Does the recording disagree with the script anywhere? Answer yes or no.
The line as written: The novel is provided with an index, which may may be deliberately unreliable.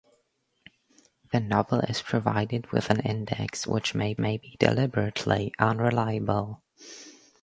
no